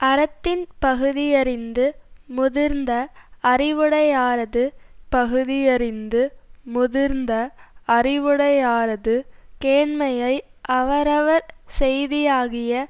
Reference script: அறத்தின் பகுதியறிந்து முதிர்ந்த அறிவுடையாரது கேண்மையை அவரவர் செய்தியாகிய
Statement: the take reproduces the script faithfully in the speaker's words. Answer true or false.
false